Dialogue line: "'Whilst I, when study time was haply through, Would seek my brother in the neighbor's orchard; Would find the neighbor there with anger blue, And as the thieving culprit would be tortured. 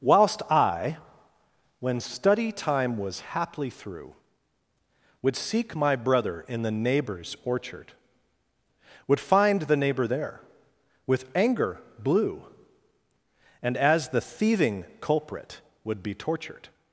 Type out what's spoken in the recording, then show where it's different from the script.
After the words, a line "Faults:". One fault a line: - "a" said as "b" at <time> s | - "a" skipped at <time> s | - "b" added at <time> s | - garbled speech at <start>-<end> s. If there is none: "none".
"'Whilst I, when study time was haply through, Would seek my brother in the neighbor's orchard; Would find the neighbor there with anger blue, And as the thieving culprit would be tortured.
Faults:
none